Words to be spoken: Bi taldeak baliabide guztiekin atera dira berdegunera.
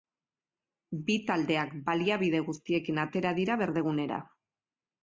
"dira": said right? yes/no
yes